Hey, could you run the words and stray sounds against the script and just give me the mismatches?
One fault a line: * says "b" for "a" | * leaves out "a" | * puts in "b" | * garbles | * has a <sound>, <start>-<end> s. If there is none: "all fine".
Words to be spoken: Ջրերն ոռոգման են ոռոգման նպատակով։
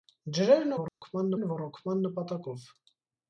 * has a dropout, 0.9-1.0 s